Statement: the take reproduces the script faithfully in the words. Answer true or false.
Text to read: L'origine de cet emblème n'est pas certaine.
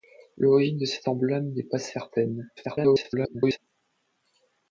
false